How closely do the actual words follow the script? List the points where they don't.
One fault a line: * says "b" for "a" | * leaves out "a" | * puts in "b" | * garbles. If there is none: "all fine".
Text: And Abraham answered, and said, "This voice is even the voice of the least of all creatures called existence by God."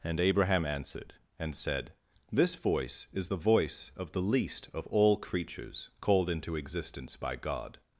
* leaves out "even"
* puts in "into"